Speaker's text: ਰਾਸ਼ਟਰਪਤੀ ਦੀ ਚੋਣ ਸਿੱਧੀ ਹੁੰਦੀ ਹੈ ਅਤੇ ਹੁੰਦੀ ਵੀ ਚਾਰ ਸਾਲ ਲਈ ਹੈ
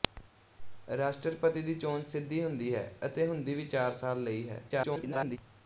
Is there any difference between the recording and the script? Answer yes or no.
yes